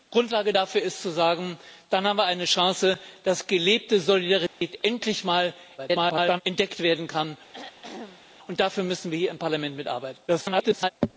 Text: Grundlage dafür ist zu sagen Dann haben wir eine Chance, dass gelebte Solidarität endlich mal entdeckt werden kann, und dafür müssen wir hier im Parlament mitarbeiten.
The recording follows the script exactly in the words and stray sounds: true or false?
false